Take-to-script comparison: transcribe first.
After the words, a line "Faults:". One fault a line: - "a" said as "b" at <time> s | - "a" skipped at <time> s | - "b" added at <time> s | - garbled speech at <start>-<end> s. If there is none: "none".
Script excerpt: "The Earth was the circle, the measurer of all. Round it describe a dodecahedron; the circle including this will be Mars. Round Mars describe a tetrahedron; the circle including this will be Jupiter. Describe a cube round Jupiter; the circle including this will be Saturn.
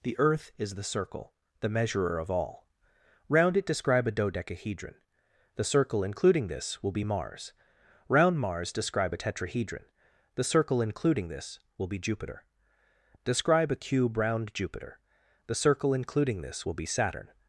"The Earth is the circle, the measurer of all. Round it describe a dodecahedron; the circle including this will be Mars. Round Mars describe a tetrahedron; the circle including this will be Jupiter. Describe a cube round Jupiter; the circle including this will be Saturn.
Faults:
- "was" said as "is" at 0.6 s